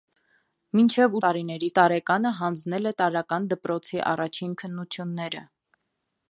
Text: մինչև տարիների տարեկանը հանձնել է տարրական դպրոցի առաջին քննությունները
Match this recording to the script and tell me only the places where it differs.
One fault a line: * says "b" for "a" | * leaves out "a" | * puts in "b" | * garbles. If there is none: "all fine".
all fine